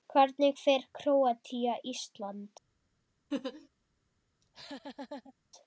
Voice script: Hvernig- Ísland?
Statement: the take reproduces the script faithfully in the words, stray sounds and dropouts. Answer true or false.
false